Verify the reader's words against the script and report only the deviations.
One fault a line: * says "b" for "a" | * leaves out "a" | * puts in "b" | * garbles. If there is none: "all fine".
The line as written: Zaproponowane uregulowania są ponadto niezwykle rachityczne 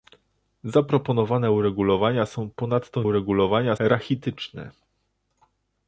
* says "uregulowania" for "niezwykle"